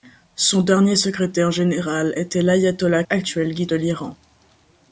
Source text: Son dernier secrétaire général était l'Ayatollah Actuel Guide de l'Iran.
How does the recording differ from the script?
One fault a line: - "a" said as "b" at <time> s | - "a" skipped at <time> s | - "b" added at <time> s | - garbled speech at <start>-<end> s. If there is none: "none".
none